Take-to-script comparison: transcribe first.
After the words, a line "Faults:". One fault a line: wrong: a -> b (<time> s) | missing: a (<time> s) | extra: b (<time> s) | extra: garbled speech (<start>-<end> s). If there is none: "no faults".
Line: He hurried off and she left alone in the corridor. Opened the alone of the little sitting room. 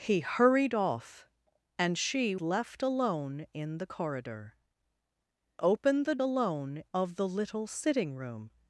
He hurried off and she left alone in the corridor. Opened the alone of the little sitting room.
Faults:
no faults